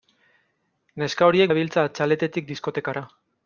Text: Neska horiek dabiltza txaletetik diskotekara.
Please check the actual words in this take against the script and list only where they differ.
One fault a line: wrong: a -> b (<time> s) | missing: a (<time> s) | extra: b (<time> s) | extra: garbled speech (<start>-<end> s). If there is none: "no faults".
no faults